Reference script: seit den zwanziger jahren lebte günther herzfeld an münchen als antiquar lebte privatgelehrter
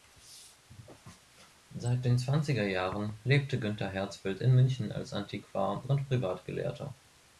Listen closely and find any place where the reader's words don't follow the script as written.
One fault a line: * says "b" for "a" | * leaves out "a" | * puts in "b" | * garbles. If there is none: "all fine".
* says "in" for "an"
* says "und" for "lebte"